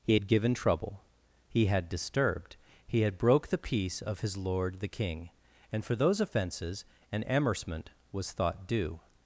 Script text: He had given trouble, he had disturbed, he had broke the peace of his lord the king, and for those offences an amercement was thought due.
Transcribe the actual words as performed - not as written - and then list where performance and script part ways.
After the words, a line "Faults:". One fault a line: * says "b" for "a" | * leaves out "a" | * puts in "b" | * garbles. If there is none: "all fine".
He had given trouble, he had disturbed, he had broke the peace of his lord the king, and for those offences an amercement was thought due.
Faults:
all fine